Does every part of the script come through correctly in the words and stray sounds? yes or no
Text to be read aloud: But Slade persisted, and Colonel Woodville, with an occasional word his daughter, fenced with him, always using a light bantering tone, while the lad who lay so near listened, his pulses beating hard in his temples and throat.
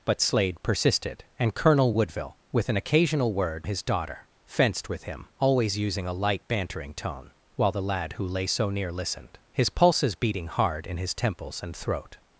yes